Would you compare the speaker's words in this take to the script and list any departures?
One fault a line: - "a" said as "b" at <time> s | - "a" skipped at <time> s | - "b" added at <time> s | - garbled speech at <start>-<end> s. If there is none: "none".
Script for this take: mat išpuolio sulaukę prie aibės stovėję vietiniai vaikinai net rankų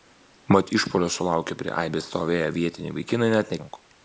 none